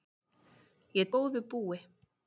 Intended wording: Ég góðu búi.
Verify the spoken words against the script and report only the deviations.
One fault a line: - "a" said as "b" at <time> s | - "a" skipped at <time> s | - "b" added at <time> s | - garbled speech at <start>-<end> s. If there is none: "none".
none